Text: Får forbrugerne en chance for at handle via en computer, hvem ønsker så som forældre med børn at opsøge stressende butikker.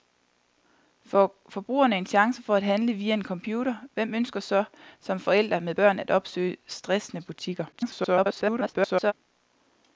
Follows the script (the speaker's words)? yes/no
no